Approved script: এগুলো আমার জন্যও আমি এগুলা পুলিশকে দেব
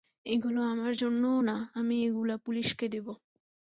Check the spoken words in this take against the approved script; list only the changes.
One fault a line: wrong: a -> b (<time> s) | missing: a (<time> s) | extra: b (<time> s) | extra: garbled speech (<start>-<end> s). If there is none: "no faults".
extra: না (1.4 s)